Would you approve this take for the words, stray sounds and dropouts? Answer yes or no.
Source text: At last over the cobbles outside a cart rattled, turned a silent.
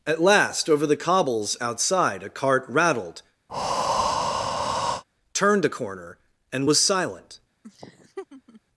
no